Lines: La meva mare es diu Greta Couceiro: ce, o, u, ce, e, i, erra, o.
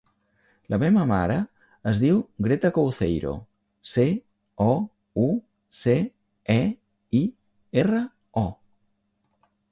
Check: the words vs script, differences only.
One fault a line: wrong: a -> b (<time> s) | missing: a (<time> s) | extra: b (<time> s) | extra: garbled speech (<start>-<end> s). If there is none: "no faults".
no faults